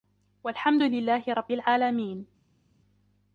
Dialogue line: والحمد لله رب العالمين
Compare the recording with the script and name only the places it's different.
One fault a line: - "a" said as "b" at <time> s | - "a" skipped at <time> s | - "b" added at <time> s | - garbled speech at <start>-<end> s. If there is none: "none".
none